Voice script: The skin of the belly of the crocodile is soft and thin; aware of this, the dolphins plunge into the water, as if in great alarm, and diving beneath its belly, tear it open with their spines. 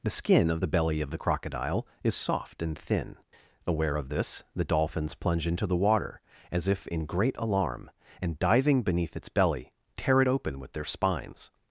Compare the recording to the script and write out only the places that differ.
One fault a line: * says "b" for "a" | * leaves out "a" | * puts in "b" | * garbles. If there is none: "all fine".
all fine